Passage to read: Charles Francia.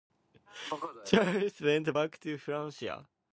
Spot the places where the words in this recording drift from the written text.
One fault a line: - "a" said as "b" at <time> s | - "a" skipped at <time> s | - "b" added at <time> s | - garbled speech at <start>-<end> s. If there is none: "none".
- "went back to" added at 1.6 s